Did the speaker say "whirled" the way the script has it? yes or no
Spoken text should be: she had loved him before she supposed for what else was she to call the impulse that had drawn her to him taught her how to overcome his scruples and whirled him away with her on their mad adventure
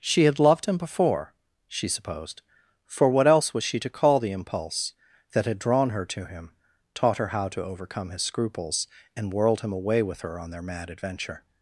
yes